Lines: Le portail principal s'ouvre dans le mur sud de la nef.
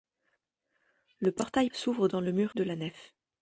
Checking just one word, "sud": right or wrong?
wrong